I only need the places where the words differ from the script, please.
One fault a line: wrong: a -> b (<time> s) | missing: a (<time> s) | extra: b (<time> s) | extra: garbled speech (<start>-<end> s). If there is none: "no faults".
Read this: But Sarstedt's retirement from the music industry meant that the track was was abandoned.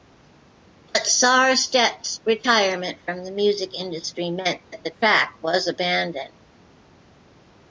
missing: was (5.7 s)